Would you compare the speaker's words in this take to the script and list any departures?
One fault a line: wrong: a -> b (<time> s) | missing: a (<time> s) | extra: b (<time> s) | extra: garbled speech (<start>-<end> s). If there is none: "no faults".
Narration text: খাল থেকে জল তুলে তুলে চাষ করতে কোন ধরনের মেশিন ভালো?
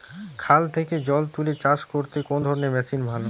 missing: তুলে (1.5 s)